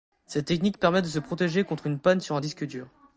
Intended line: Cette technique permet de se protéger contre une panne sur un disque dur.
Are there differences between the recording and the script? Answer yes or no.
no